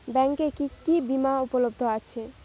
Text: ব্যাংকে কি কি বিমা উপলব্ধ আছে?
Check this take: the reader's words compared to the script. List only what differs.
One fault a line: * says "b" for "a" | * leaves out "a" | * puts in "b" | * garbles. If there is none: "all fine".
all fine